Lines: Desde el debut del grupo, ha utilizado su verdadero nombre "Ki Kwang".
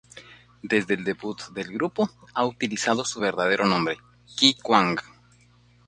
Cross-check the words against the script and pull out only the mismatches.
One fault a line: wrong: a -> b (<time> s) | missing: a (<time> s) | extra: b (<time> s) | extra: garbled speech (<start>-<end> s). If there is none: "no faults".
no faults